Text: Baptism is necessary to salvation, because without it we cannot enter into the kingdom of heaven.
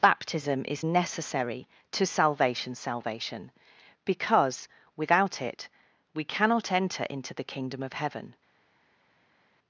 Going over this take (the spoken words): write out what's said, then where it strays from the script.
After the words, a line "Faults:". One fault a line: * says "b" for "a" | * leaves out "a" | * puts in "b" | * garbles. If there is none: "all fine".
Baptism is necessary to salvation salvation, because without it we cannot enter into the kingdom of heaven.
Faults:
* puts in "salvation"